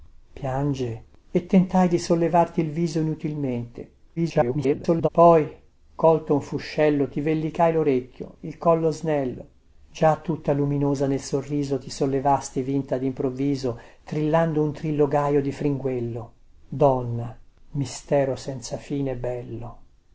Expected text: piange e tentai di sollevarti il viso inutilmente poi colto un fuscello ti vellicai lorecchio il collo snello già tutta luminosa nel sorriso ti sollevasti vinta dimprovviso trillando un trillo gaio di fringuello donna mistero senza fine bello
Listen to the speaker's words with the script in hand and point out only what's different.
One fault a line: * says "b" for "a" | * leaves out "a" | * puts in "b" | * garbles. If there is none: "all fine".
* garbles